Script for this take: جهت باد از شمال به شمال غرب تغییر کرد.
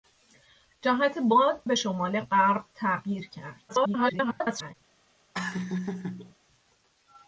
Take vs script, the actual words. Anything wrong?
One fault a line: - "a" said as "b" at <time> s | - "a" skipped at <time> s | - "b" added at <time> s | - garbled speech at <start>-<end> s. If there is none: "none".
- "از شمال" skipped at 1.6 s
- garbled speech at 3.7-4.7 s